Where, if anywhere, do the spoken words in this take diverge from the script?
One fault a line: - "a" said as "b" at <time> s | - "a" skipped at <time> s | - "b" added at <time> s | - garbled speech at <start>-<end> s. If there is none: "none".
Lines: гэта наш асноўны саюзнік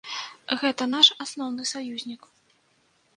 none